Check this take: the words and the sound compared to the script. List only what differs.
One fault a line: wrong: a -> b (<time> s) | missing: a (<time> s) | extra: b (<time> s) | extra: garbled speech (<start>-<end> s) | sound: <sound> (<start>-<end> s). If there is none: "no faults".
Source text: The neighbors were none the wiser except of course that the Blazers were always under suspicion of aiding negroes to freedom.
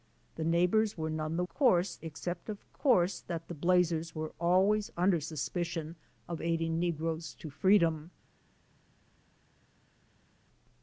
wrong: wiser -> course (1.5 s)